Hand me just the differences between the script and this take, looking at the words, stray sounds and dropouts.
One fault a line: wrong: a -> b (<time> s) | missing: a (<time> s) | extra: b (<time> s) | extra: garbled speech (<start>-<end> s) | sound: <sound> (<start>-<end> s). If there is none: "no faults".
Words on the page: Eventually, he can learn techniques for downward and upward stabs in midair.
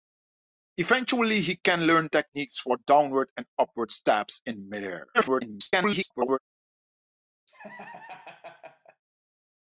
extra: garbled speech (5.1-6.4 s)
sound: laugh (7.5-9.0 s)